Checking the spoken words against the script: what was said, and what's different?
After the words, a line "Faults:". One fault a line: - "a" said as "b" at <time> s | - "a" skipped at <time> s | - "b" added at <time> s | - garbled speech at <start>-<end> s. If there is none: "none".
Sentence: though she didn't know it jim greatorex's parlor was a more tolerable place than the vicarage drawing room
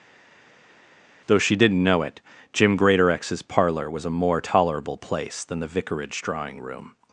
though she didn't know it jim greatorex's parlor was a more tolerable place than the vicarage drawing room
Faults:
none